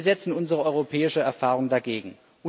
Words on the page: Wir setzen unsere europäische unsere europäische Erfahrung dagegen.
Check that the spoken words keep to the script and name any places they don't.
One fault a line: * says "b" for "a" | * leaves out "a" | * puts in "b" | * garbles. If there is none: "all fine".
* leaves out "unsere europäische"